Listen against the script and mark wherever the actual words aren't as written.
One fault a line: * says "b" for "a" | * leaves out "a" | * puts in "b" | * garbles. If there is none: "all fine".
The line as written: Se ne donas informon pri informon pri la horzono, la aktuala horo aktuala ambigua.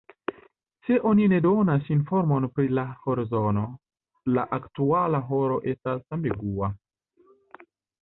* puts in "oni"
* leaves out "informon pri"
* says "estas" for "aktuala"